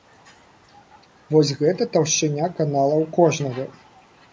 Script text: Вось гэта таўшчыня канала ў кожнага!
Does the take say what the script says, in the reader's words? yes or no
yes